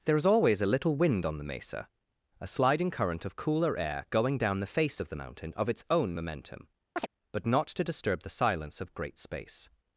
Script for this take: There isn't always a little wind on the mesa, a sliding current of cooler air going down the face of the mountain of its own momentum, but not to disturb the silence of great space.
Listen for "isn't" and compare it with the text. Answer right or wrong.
wrong